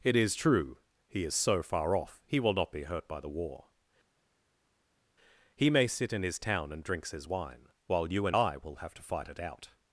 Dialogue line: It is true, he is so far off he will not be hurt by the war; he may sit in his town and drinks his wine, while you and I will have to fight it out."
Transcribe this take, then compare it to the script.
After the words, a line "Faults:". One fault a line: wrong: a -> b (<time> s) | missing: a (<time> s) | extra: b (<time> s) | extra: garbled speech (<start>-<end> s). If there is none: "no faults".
It is true, he is so far off he will not be hurt by the war; he may sit in his town and drinks his wine, while you and I will have to fight it out."
Faults:
no faults